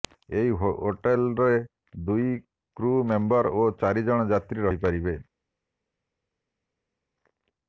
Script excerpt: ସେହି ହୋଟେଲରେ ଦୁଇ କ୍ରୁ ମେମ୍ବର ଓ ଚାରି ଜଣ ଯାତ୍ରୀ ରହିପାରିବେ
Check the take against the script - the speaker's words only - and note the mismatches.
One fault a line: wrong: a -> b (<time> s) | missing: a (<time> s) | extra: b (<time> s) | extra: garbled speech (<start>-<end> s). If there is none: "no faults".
wrong: ସେହି -> ଏହି (0.3 s)